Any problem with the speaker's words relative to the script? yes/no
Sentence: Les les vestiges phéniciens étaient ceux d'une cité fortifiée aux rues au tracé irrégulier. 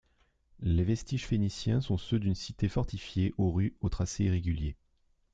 yes